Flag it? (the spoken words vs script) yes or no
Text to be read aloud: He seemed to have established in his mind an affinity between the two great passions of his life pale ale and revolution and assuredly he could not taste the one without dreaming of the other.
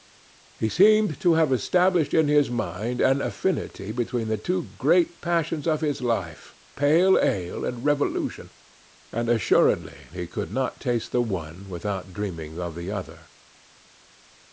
no